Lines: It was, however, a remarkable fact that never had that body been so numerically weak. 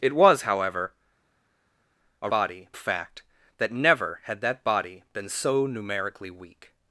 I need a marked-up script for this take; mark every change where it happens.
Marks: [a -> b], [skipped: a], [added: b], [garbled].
It was, however, a [remarkable -> body] fact that never had that body been so numerically weak.